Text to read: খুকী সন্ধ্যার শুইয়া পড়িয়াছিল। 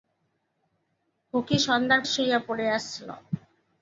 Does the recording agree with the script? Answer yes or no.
yes